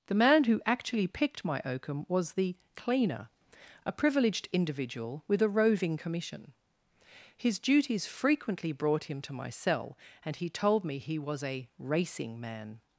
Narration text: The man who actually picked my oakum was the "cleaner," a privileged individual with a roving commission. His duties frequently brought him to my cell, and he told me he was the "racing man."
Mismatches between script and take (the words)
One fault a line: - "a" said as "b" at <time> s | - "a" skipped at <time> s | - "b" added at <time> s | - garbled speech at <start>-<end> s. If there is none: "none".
- "the" said as "a" at 11.4 s